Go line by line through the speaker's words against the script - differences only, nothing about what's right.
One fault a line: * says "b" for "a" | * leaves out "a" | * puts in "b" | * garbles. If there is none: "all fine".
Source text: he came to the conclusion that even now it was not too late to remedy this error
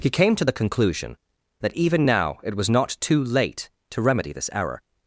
all fine